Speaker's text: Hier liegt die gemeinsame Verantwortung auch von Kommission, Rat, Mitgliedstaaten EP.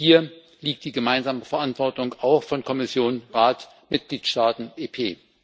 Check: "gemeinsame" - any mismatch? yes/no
no